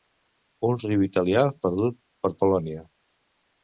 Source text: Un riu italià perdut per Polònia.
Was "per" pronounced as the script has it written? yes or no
yes